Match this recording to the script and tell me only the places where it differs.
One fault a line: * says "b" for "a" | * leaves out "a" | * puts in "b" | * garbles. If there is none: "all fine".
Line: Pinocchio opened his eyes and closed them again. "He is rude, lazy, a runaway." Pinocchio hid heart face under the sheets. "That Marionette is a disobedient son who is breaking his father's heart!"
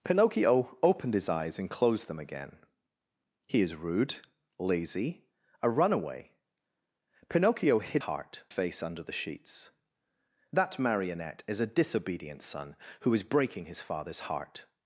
all fine